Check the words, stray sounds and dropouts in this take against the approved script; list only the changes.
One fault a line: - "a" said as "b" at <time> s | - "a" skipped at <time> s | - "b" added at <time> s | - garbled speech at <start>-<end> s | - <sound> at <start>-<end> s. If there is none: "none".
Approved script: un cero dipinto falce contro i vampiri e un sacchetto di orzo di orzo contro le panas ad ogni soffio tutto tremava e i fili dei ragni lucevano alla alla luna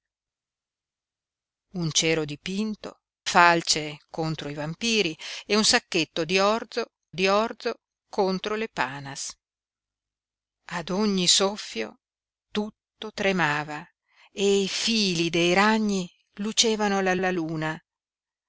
none